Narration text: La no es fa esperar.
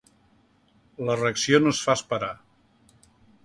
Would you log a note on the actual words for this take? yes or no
yes